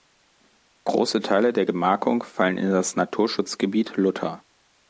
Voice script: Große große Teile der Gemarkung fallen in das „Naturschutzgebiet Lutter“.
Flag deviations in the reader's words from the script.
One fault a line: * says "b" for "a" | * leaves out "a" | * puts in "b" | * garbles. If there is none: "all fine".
* leaves out "große"